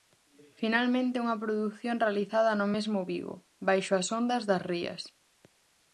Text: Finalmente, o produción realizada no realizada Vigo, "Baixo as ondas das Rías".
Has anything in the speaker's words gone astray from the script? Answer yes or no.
yes